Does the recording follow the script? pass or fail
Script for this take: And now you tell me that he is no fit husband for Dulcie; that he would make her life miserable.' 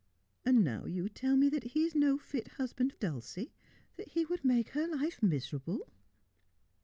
fail